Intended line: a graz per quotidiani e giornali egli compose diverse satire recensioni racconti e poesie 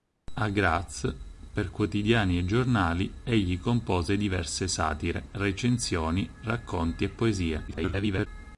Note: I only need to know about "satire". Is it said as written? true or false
true